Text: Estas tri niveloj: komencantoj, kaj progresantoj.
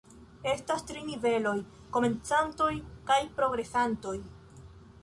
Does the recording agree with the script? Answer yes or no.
yes